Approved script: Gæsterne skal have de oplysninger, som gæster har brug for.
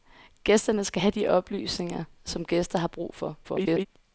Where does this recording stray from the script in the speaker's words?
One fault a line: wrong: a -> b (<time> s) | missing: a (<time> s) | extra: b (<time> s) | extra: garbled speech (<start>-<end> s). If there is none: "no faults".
extra: garbled speech (3.4-3.9 s)